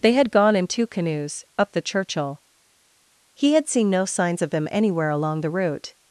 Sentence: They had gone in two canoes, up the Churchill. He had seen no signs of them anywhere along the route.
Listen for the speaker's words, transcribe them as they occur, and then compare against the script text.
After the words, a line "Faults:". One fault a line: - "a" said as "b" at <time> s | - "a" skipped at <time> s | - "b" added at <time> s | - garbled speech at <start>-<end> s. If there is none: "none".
They had gone in two canoes, up the Churchill. He had seen no signs of them anywhere along the route.
Faults:
none